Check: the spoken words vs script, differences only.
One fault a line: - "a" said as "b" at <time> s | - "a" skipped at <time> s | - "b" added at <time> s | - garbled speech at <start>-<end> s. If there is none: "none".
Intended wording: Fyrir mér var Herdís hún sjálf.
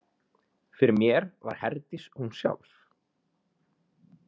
none